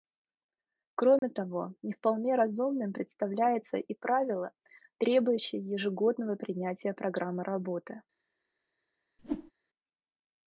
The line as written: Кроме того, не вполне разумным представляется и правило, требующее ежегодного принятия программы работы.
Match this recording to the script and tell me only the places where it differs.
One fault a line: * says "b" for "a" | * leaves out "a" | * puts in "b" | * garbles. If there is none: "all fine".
all fine